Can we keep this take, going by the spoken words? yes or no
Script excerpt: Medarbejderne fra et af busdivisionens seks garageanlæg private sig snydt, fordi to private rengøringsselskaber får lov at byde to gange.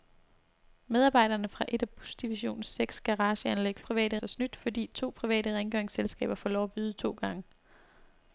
yes